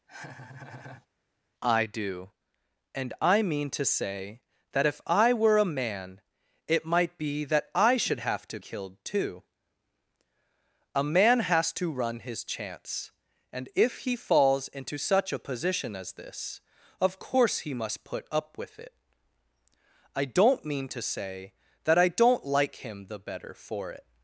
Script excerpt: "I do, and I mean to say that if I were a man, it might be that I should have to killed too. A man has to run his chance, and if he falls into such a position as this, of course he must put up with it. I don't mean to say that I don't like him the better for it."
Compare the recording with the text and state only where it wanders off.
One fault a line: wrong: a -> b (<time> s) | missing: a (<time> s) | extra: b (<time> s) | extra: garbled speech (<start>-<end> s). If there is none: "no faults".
no faults